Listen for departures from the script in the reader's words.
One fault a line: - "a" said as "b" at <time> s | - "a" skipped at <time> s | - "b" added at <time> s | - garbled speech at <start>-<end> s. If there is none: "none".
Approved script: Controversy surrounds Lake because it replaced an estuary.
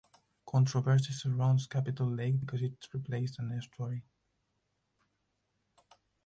- "Capitol" added at 1.7 s